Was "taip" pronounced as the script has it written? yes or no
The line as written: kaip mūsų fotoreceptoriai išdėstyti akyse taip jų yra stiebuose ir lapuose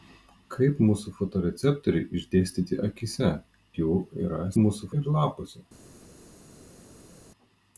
no